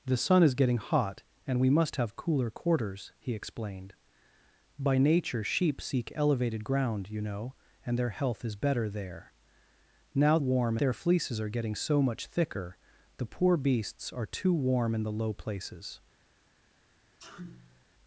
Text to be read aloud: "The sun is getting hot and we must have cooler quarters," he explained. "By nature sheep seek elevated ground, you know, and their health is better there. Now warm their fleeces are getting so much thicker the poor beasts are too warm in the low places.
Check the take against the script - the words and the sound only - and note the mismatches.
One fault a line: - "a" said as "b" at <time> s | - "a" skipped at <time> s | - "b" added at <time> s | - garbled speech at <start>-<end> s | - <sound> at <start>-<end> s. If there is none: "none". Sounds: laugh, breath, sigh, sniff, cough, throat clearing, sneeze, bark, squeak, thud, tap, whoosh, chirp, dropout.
- sneeze at 17.2-17.9 s